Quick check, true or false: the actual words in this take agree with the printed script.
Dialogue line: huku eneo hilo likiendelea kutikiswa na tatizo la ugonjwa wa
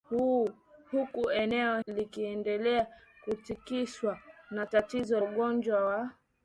false